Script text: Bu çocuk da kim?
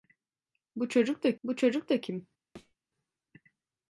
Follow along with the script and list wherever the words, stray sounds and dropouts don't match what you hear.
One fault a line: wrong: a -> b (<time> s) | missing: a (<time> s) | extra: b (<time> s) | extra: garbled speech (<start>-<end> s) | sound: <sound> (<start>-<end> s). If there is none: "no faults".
extra: bu çocuk da (1.4 s)
sound: thud (2.6-2.8 s)